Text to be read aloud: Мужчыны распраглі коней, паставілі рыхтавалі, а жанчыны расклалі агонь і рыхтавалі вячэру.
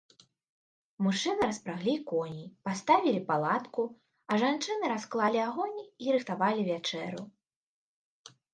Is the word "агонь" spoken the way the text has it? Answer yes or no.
yes